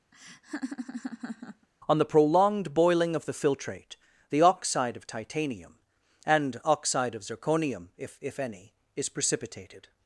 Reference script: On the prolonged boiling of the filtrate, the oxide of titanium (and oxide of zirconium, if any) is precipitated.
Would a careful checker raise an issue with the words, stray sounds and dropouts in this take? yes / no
yes